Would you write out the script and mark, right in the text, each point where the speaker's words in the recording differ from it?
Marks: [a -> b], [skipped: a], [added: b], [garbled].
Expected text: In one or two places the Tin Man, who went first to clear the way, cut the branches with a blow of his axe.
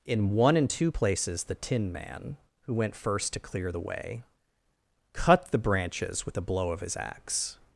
In one [or -> and] two places the Tin Man, who went first to clear the way, cut the branches with a blow of his axe.